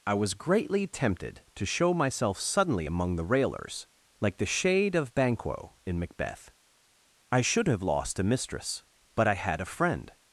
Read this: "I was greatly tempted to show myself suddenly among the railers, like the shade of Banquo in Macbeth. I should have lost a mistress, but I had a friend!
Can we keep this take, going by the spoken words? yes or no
yes